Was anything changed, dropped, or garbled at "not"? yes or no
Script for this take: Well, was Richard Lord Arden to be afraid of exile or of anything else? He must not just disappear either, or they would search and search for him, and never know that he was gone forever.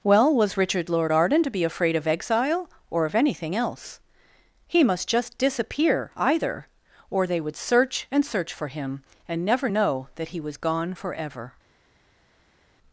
yes